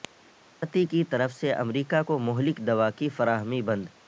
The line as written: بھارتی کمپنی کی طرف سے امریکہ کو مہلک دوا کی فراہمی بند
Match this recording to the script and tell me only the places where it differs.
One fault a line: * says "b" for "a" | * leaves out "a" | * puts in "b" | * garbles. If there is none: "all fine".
* leaves out "کمپنی"